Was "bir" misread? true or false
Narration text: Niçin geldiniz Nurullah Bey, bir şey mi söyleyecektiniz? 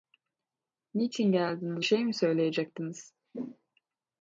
true